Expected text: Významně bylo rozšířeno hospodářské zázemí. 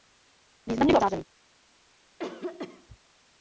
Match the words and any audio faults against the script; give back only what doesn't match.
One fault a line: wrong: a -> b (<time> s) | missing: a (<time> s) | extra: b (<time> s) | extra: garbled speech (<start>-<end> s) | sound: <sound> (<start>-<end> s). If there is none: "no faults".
missing: rozšířeno hospodářské (1.0 s)
sound: cough (2.2-3.0 s)